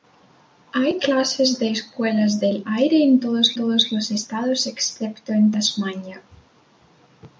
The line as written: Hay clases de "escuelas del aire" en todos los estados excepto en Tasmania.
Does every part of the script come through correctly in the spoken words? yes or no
no